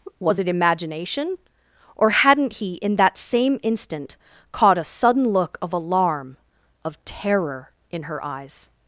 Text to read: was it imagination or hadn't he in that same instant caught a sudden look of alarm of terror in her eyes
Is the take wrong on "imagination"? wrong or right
right